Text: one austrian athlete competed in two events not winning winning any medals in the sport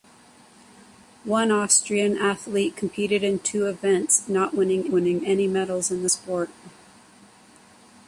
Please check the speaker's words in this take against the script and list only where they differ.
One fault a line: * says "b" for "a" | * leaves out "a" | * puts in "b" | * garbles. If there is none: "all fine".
all fine